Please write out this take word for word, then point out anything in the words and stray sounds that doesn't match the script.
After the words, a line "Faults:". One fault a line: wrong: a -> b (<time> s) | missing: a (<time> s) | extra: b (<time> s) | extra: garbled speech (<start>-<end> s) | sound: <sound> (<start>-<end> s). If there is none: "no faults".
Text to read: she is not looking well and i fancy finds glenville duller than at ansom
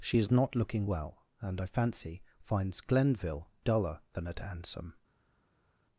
she is not looking well and i fancy finds glenville duller than at ansom
Faults:
no faults